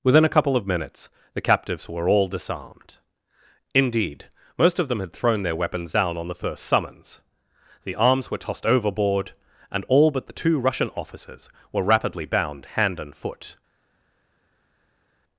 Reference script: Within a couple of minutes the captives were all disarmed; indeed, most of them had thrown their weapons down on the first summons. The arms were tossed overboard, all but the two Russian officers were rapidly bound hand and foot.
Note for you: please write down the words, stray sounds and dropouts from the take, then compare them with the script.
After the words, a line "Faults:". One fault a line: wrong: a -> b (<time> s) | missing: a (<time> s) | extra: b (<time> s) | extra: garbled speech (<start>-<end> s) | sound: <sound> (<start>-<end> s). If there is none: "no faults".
Within a couple of minutes the captives were all disarmed; indeed, most of them had thrown their weapons down on the first summons. The arms were tossed overboard, and all but the two Russian officers were rapidly bound hand and foot.
Faults:
extra: and (9.7 s)